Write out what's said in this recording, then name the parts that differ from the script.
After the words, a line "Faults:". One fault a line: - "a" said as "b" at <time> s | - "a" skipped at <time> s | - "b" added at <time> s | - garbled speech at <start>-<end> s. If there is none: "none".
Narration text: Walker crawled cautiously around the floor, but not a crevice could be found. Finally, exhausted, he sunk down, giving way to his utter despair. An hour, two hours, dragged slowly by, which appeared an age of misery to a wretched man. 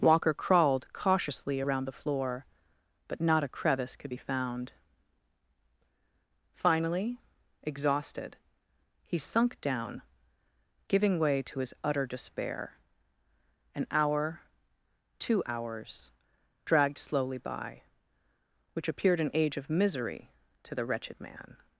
Walker crawled cautiously around the floor, but not a crevice could be found. Finally, exhausted, he sunk down, giving way to his utter despair. An hour, two hours, dragged slowly by, which appeared an age of misery to the wretched man.
Faults:
- "a" said as "the" at 20.7 s